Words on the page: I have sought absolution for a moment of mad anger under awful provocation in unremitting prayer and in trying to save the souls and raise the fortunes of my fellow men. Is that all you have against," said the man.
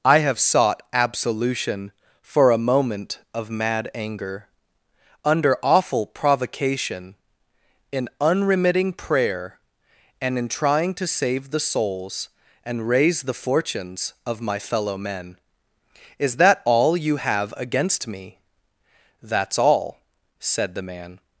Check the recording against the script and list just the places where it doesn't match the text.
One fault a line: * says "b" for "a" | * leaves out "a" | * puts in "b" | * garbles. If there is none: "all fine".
* puts in "me That's all"